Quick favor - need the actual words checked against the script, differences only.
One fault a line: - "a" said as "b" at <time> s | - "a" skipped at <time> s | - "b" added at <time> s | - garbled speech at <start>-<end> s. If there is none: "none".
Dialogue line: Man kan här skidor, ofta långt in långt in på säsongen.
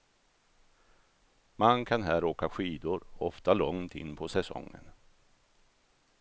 - "åka" added at 2.2 s
- "långt in" skipped at 4.2 s